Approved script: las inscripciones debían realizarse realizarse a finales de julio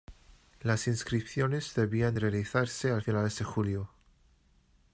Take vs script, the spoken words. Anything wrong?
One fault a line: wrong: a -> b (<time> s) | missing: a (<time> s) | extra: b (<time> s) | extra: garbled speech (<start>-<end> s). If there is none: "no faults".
missing: realizarse (2.9 s)